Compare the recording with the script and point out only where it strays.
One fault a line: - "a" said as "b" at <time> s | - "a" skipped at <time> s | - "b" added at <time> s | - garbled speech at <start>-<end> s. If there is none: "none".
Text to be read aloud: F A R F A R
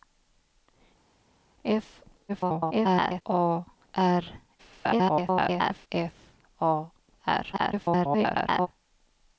- garbled speech at 2.3-3.2 s
- garbled speech at 4.6-5.9 s
- garbled speech at 7.5-8.7 s